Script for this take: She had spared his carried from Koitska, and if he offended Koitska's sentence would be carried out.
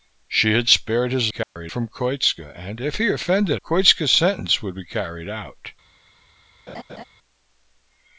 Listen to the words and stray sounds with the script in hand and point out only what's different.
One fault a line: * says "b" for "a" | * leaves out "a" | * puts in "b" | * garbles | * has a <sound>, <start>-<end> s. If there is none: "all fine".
* has a dropout, 1.4-1.6 s
* has a laugh, 6.7-7.0 s